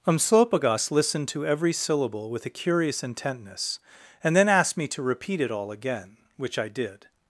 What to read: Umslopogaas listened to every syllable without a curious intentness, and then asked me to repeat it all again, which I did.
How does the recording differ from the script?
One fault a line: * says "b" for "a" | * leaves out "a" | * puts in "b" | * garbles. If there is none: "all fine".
* says "with" for "without"